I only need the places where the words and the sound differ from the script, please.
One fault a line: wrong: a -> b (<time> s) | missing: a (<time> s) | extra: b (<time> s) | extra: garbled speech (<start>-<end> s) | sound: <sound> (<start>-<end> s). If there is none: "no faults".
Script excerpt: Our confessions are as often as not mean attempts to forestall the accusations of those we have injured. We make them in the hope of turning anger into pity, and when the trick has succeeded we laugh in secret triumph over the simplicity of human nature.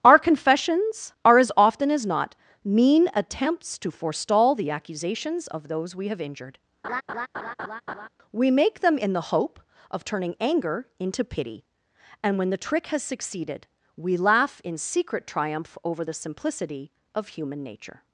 sound: laugh (6.8-8.1 s)